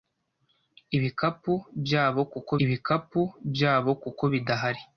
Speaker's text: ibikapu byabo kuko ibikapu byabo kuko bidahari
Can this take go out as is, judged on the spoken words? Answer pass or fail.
pass